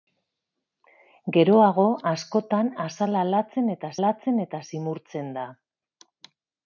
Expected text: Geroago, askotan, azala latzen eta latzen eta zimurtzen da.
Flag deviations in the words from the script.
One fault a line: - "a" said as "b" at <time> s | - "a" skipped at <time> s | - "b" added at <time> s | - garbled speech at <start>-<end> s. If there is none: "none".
none